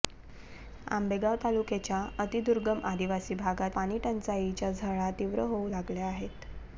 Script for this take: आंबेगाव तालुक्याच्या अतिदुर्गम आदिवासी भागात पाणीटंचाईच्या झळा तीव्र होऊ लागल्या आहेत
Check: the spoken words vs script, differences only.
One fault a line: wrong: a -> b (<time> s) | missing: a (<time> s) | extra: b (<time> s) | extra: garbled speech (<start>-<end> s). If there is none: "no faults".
no faults